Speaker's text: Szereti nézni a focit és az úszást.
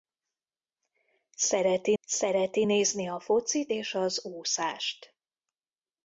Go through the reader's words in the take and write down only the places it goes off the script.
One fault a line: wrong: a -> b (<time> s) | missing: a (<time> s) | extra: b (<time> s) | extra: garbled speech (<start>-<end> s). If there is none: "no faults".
extra: szereti (2.0 s)